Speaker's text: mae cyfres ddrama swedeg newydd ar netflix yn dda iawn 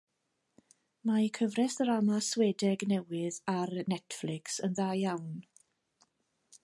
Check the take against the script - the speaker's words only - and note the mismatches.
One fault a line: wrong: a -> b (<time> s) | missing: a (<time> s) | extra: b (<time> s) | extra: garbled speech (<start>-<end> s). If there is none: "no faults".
no faults